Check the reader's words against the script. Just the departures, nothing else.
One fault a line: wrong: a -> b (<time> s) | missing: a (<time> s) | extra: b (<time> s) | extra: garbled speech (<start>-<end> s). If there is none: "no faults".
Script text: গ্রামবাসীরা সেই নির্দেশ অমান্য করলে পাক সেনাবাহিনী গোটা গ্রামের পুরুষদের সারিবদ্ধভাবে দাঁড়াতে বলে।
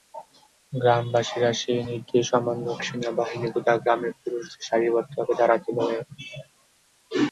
missing: করলে পাক (2.6 s)